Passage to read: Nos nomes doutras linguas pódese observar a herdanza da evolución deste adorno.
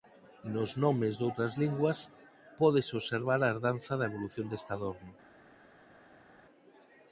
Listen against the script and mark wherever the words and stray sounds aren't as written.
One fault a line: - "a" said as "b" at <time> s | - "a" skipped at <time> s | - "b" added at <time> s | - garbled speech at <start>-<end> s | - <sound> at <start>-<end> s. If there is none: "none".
none